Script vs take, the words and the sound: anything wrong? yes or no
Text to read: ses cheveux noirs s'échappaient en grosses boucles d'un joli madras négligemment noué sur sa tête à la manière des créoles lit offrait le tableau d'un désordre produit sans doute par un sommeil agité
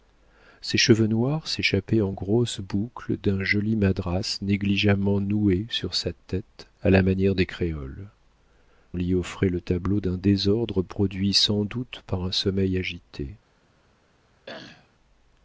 yes